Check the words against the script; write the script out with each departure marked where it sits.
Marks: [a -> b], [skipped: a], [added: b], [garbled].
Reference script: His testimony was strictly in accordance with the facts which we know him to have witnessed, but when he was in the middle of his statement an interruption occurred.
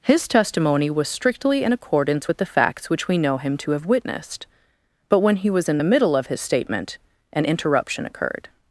His testimony was strictly in accordance with the facts which we know him to have witnessed, but when he was in the middle of his statement an interruption occurred.